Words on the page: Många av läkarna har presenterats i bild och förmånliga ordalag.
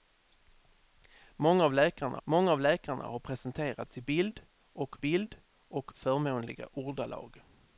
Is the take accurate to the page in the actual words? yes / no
no